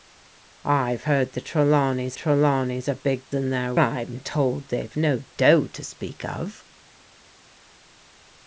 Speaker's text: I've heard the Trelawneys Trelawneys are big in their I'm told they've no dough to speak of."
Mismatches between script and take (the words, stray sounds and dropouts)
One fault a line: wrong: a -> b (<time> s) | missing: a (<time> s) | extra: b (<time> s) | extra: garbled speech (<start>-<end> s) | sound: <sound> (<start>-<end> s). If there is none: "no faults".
no faults